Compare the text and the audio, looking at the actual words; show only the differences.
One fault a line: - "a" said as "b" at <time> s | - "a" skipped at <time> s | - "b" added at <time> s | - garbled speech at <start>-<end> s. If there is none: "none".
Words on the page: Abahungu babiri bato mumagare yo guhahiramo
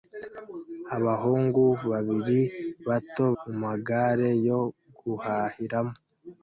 none